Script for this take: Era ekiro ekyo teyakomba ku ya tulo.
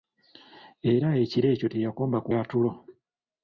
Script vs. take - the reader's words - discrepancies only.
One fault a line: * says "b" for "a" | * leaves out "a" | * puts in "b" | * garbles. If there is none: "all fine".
all fine